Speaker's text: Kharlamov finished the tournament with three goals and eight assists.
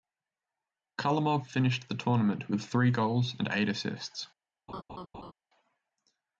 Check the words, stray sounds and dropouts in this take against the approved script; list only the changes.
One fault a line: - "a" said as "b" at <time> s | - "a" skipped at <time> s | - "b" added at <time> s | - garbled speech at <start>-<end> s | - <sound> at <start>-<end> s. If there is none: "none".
- laugh at 4.7-5.3 s